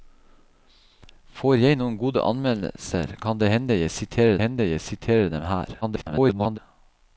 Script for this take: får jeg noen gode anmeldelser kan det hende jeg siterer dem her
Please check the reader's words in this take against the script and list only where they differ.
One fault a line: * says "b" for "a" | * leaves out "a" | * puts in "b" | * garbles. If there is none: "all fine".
* puts in "hende jeg siterer"
* garbles